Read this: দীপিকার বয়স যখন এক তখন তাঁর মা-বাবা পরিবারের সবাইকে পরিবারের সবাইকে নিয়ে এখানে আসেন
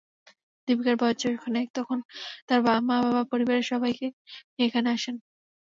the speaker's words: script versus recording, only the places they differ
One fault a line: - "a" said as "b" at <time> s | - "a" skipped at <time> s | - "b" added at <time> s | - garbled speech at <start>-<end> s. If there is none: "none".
- "পরিবারের সবাইকে" skipped at 4.1 s